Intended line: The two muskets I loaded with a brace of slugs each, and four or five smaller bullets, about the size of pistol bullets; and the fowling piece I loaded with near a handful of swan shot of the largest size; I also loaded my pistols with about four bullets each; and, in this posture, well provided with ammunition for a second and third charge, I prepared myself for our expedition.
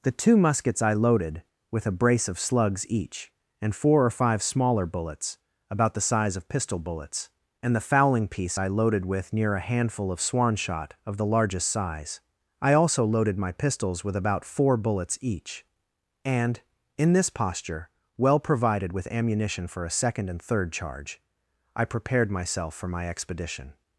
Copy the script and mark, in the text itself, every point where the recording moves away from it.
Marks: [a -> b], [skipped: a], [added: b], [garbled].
The two muskets I loaded with a brace of slugs each, and four or five smaller bullets, about the size of pistol bullets; and the fowling piece I loaded with near a handful of swan shot of the largest size; I also loaded my pistols with about four bullets each; and, in this posture, well provided with ammunition for a second and third charge, I prepared myself for [our -> my] expedition.